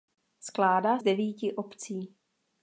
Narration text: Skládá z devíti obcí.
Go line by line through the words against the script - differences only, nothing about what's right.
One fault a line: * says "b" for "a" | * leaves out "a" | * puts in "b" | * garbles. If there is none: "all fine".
all fine